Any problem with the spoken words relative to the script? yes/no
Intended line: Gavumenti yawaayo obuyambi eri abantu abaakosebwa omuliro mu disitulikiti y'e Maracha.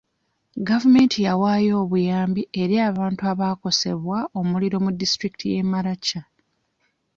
no